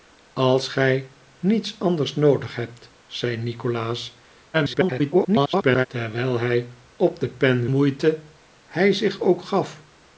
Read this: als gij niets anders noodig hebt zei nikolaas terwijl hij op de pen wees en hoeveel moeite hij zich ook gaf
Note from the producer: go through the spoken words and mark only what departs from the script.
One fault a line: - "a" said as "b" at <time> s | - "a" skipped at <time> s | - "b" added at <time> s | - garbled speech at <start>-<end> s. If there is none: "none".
- garbled speech at 4.5-5.9 s
- "wees en hoeveel" skipped at 7.7 s